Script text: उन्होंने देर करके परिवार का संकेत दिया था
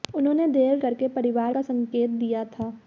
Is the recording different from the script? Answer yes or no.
no